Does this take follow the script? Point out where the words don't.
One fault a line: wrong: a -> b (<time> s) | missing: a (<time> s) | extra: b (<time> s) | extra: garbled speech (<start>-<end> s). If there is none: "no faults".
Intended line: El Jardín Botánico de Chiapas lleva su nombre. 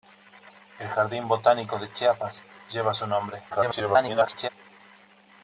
extra: garbled speech (3.5-4.5 s)